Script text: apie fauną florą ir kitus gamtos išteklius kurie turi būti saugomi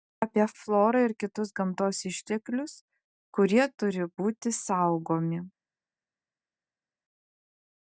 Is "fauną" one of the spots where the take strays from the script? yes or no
yes